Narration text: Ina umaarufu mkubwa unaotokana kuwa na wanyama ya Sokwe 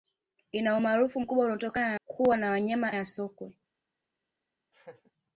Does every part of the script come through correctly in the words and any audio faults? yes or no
no